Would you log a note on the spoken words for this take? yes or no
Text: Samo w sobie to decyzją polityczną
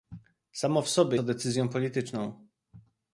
no